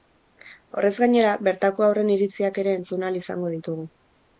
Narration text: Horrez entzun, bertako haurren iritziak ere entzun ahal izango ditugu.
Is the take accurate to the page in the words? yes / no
no